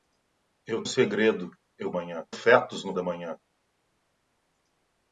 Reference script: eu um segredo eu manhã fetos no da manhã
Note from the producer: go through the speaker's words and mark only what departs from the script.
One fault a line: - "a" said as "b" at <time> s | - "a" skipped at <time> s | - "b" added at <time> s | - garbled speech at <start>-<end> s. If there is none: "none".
none